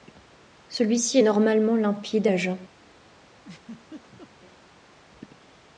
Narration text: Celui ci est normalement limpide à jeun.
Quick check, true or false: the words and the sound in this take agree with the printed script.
false